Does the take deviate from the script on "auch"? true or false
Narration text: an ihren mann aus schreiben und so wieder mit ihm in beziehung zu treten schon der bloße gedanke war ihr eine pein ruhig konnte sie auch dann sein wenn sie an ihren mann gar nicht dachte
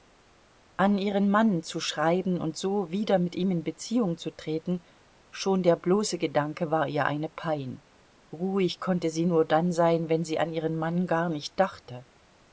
true